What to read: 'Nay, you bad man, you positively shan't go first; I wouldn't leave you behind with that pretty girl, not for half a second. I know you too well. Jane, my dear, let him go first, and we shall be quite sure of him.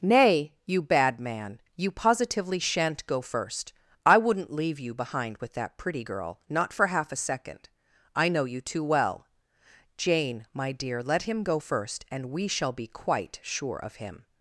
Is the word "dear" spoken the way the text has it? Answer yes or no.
yes